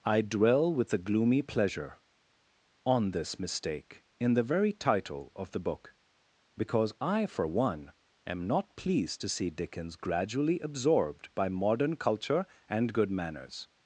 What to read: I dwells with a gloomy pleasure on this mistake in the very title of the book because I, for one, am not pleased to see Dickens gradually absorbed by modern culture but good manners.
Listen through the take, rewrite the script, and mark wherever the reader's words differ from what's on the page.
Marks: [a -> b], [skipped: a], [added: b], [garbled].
I [dwells -> dwell] with a gloomy pleasure on this mistake in the very title of the book because I, for one, am not pleased to see Dickens gradually absorbed by modern culture [but -> and] good manners.